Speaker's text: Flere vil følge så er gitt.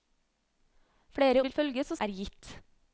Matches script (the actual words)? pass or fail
pass